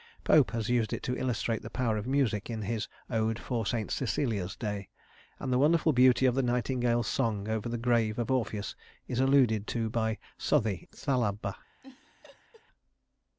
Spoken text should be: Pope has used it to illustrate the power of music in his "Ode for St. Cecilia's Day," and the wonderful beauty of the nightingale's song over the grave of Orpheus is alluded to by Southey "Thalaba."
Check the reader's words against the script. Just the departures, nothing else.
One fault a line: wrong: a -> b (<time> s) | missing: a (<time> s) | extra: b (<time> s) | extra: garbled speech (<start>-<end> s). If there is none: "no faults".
no faults